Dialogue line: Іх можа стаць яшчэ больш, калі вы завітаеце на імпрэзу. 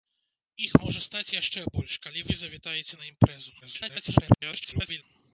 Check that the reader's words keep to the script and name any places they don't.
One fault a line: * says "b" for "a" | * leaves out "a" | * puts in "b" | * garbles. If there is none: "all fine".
* garbles